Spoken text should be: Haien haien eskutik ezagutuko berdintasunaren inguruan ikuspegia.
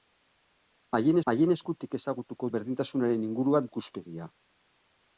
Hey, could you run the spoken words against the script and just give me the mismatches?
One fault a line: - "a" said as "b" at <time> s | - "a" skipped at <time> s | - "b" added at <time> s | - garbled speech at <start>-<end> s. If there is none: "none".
none